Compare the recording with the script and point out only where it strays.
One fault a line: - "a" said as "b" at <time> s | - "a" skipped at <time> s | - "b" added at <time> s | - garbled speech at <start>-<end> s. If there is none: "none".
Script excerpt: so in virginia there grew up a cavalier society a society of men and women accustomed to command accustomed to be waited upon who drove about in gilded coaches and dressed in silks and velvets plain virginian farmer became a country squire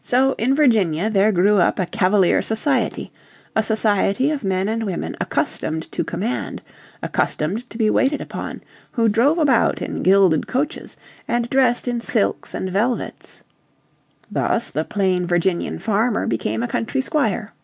- "thus the" added at 14.3 s